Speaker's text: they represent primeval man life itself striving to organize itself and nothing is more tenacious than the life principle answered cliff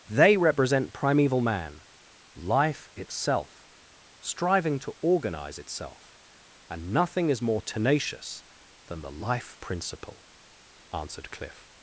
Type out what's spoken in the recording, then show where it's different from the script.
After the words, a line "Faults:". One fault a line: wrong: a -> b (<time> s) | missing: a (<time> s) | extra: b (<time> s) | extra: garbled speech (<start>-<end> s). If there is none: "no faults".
they represent primeval man life itself striving to organize itself and nothing is more tenacious than the life principle answered cliff
Faults:
no faults